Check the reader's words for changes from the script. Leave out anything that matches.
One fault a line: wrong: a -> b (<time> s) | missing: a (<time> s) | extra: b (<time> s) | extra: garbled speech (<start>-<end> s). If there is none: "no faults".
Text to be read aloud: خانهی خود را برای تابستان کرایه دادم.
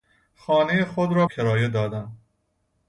missing: برای تابستان (1.2 s)